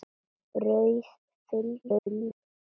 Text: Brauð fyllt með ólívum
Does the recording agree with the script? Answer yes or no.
no